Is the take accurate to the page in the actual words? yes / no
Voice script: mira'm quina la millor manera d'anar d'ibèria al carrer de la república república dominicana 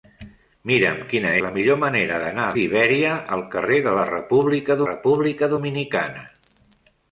yes